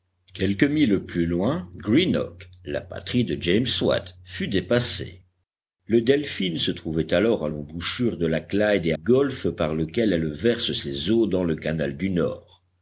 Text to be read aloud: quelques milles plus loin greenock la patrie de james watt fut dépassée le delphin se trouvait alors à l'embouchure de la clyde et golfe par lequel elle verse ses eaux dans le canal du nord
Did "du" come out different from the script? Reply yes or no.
no